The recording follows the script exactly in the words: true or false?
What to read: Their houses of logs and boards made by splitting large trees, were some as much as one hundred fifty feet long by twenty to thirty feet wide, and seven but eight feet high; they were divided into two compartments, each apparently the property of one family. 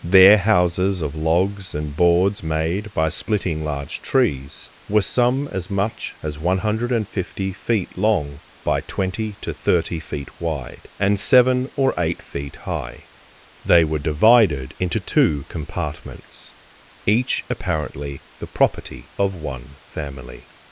false